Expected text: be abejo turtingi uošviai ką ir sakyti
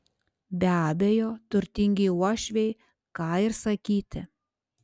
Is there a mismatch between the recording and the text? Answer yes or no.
no